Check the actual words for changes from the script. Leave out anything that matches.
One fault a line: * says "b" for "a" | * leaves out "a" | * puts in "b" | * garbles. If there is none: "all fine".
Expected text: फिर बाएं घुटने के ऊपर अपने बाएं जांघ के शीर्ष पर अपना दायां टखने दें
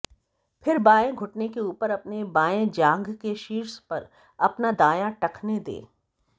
all fine